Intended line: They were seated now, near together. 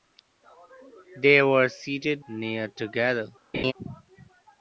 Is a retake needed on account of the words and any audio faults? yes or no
yes